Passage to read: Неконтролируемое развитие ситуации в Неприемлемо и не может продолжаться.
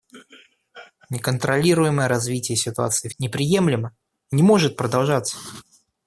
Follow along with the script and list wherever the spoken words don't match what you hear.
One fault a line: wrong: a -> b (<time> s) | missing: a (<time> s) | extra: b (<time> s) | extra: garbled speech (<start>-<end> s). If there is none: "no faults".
no faults